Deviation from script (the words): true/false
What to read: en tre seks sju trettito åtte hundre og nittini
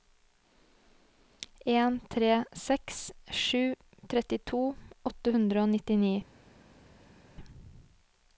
false